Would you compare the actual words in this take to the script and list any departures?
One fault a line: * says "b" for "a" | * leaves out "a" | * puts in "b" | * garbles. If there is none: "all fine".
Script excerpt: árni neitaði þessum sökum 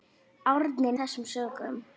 * leaves out "neitaði"